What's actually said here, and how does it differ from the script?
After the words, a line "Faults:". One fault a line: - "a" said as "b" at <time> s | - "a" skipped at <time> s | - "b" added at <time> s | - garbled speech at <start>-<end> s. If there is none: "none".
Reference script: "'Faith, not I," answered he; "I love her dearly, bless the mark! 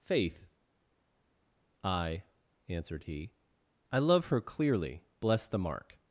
"'Faith, I," answered he; "I love her clearly, bless the mark!
Faults:
- "not" skipped at 0.5 s
- "dearly" said as "clearly" at 4.4 s